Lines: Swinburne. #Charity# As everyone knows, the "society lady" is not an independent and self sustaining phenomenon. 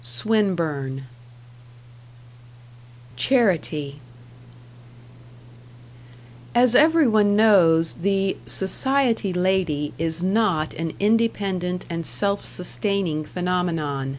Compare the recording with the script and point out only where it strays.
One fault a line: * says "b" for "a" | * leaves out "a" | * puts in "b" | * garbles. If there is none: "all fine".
all fine